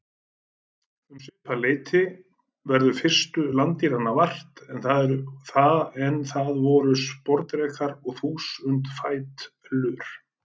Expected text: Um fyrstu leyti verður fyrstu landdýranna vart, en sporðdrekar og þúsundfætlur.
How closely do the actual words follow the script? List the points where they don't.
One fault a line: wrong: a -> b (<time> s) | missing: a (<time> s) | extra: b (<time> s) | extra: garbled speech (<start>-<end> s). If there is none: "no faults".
wrong: fyrstu -> svipað (1.2 s)
extra: það voru (6.3 s)